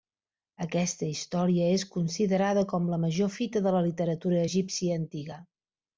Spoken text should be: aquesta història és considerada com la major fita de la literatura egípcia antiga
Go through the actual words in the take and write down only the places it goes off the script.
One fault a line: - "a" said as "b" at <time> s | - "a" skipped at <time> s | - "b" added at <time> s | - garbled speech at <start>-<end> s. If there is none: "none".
none